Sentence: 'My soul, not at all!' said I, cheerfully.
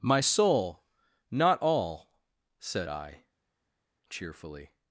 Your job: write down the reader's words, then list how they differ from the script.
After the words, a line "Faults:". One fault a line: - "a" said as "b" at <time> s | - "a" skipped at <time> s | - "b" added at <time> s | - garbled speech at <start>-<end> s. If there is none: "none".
'My soul, not all!' said I, cheerfully.
Faults:
- "at" skipped at 1.6 s